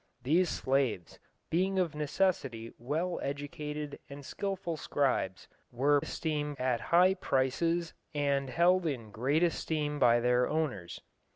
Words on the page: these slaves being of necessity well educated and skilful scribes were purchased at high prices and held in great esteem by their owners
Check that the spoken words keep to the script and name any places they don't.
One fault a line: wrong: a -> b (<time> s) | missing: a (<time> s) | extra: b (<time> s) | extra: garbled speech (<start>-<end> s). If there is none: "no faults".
wrong: purchased -> esteem (6.0 s)